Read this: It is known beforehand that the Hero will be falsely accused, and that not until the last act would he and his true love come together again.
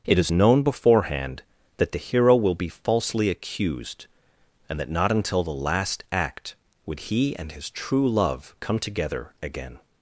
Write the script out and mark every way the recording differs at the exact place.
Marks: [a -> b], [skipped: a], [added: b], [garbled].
It is known beforehand that the Hero will be falsely accused, and that not until the last act would he and his true love come together again.